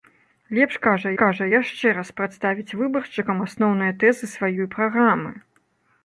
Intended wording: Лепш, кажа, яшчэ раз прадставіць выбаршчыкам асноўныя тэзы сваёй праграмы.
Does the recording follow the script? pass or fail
fail